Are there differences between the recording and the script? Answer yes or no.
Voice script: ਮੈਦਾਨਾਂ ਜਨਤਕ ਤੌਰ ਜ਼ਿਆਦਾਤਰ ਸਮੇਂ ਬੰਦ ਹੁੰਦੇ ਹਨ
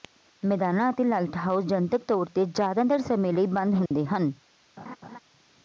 yes